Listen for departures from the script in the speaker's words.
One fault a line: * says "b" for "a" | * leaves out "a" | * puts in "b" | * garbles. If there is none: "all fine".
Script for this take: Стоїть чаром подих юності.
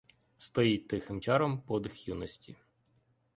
* puts in "тихим"